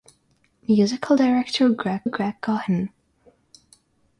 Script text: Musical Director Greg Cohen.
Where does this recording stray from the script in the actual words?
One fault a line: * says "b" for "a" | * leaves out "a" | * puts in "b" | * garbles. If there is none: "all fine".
* puts in "Greg"